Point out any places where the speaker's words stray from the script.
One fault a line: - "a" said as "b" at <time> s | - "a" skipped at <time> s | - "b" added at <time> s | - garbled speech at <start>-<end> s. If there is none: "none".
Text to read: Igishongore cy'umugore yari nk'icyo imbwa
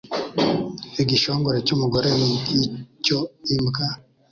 - "yari" said as "ni" at 2.2 s